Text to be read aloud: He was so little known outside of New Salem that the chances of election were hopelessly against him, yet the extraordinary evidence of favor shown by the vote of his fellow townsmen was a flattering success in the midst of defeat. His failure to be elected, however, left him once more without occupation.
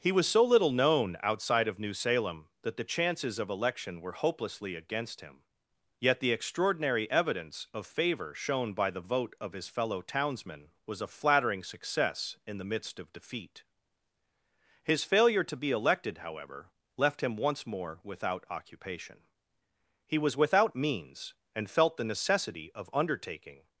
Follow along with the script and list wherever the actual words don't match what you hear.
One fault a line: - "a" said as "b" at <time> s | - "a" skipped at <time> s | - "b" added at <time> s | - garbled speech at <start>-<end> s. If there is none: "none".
- "He was without means and felt the necessity of undertaking" added at 20.1 s